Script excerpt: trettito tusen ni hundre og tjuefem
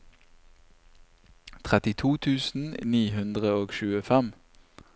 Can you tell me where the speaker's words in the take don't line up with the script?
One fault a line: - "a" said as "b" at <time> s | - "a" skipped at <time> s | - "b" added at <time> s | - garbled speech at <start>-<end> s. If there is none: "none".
none